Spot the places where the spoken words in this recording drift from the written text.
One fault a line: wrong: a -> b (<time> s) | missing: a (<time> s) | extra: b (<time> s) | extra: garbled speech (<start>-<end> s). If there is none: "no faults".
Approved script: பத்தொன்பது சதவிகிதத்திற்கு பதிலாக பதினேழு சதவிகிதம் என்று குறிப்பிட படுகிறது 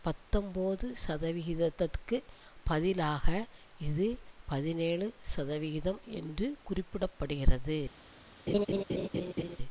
extra: இது (3.9 s)